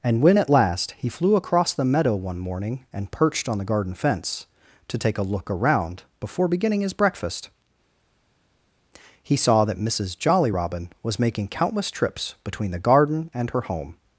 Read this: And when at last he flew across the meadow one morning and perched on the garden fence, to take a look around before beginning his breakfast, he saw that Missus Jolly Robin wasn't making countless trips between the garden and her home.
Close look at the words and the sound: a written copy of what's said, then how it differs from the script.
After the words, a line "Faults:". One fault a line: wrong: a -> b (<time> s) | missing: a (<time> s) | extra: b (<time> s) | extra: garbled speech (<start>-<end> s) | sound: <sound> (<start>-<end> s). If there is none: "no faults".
And when at last he flew across the meadow one morning and perched on the garden fence, to take a look around before beginning his breakfast, he saw that Missus Jolly Robin was making countless trips between the garden and her home.
Faults:
wrong: wasn't -> was (11.0 s)